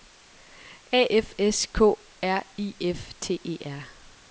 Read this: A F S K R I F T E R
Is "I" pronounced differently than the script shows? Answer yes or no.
no